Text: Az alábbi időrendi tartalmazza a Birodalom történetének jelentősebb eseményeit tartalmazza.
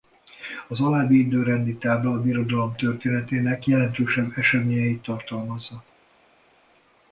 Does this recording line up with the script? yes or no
no